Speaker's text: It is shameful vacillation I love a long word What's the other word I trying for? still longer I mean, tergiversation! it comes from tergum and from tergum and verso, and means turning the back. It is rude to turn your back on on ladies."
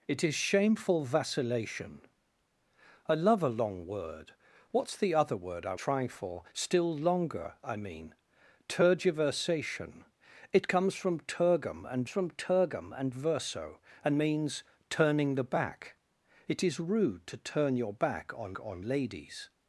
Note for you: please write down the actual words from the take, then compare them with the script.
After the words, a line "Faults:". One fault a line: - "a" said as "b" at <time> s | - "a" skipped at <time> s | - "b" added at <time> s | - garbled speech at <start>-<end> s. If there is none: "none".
It is shameful vacillation I love a long word What's the other word I trying for? still longer I mean, tergiversation! it comes from tergum and from tergum and verso, and means turning the back. It is rude to turn your back on on ladies."
Faults:
none